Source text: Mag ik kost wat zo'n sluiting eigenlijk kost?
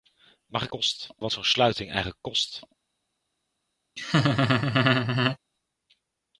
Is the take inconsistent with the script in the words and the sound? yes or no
yes